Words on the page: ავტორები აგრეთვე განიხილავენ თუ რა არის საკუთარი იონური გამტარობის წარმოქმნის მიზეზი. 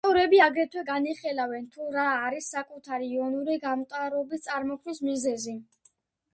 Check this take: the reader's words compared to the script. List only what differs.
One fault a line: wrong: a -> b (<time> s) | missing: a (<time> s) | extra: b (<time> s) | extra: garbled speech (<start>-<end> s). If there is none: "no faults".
no faults